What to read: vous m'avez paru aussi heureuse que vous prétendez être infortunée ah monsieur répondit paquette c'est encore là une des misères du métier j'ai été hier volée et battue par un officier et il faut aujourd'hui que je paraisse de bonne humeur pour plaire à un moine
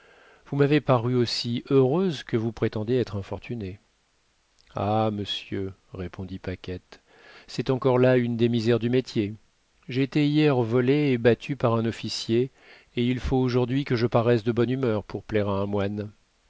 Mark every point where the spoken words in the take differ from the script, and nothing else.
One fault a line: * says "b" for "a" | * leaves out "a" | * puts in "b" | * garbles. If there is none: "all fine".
all fine